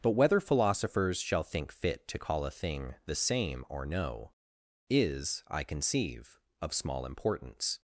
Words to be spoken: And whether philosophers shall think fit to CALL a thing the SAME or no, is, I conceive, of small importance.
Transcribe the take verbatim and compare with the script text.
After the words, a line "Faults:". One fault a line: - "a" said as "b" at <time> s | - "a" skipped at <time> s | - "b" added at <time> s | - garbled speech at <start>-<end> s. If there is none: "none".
But whether philosophers shall think fit to CALL a thing the SAME or no, is, I conceive, of small importance.
Faults:
- "And" said as "But" at 0.0 s